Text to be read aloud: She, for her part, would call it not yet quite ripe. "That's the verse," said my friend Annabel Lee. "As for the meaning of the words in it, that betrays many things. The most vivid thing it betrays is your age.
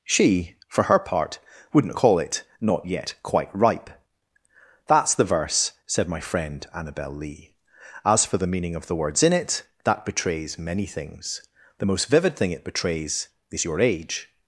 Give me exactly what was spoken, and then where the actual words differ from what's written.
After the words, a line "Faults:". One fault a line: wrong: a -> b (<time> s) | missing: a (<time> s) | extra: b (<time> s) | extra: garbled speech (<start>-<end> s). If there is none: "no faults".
She, for her part, wouldn't call it not yet quite ripe. "That's the verse," said my friend Annabel Lee. "As for the meaning of the words in it, that betrays many things. The most vivid thing it betrays is your age.
Faults:
wrong: would -> wouldn't (1.7 s)